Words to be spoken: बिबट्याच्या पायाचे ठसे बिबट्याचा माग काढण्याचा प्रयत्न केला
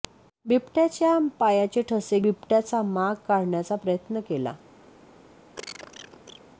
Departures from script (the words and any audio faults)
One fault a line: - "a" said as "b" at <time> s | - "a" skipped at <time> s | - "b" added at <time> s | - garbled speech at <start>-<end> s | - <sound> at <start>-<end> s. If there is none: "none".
- cough at 5.6-6.4 s